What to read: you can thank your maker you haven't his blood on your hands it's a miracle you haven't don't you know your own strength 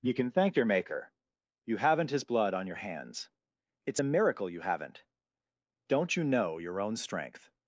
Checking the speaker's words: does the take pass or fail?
pass